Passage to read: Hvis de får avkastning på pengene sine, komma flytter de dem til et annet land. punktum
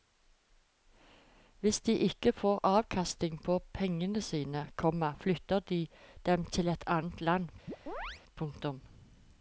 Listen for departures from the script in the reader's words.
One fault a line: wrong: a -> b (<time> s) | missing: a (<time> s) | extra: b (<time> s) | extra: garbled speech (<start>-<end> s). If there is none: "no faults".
extra: ikke (1.9 s)